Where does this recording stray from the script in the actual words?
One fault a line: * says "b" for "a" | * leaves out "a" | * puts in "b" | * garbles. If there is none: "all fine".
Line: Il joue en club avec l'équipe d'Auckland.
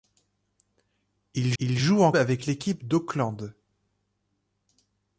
* puts in "il"
* leaves out "club"